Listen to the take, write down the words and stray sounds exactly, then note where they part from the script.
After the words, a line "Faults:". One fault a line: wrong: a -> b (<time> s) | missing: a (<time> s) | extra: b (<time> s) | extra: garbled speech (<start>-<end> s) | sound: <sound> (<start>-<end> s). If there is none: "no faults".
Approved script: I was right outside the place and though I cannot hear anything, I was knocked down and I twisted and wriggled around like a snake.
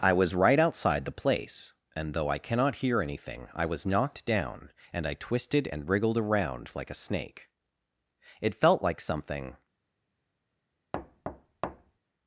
I was right outside the place and though I cannot hear anything, I was knocked down and I twisted and wriggled around like a snake. It felt like something
Faults:
extra: It felt like something (8.4 s)
sound: thud (10.9-12.0 s)